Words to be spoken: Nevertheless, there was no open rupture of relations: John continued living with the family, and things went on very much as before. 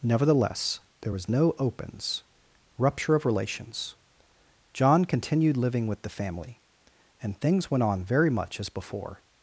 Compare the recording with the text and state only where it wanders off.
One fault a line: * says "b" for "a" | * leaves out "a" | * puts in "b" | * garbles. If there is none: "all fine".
* says "opens" for "open"